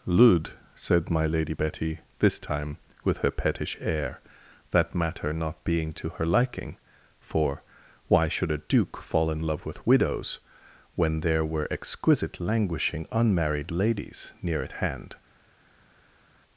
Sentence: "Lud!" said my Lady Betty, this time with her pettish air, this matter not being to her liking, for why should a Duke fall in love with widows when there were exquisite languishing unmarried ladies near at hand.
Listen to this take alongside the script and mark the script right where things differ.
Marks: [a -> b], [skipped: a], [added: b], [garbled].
"Lud!" said my Lady Betty, this time with her pettish air, [this -> that] matter not being to her liking, for why should a Duke fall in love with widows when there were exquisite languishing unmarried ladies near at hand.